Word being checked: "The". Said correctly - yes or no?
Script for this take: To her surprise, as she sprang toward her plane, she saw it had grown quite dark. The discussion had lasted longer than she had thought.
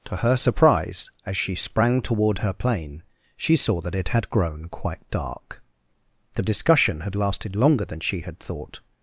yes